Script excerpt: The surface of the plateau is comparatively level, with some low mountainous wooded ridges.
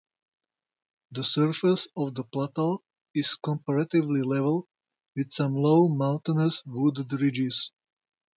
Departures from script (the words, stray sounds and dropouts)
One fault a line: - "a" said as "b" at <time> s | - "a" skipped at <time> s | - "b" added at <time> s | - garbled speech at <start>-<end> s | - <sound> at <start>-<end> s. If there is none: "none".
none